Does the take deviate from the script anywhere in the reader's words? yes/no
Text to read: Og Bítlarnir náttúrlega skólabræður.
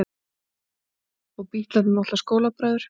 no